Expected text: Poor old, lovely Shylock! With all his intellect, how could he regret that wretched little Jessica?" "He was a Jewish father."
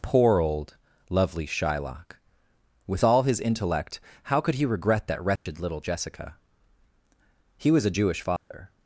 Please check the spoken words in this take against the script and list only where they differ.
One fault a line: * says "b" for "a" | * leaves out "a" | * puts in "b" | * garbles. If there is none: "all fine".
all fine